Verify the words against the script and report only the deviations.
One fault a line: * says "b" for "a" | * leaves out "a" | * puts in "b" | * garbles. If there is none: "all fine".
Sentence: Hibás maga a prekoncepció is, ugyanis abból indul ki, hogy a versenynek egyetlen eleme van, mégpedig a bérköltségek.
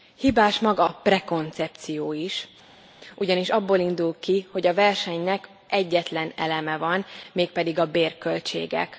all fine